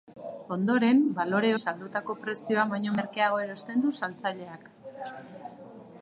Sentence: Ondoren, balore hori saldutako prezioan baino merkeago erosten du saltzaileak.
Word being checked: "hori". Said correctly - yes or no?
no